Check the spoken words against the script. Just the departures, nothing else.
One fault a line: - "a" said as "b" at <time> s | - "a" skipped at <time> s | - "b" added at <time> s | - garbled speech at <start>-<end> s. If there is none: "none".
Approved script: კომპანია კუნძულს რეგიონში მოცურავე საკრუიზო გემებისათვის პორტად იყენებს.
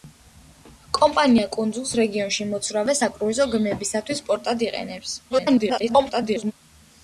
- garbled speech at 5.3-6.5 s